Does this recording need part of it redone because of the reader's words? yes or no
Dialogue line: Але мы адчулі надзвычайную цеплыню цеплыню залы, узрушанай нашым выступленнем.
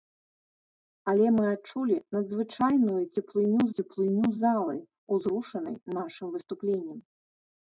no